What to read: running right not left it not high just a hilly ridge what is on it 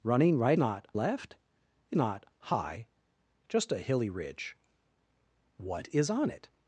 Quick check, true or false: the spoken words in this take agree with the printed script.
true